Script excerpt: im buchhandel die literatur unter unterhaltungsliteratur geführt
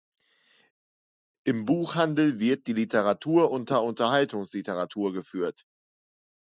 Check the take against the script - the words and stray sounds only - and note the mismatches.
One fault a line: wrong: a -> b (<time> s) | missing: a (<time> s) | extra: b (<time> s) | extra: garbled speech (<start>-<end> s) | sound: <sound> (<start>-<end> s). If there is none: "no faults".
extra: wird (2.4 s)